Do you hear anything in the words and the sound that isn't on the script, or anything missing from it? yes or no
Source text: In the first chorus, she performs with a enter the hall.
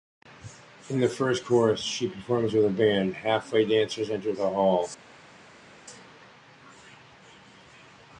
yes